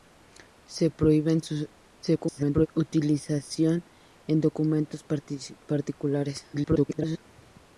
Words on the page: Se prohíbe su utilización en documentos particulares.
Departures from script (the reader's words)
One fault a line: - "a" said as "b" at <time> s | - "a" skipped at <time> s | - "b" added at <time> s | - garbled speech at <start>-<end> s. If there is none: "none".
- garbled speech at 2.0-2.7 s
- garbled speech at 6.5-7.2 s